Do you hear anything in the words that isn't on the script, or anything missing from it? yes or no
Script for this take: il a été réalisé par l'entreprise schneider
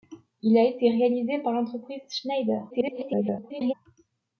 yes